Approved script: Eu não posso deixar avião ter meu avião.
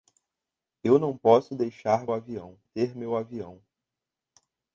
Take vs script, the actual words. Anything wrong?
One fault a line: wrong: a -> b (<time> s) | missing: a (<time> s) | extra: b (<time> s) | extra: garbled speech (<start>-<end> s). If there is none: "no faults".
no faults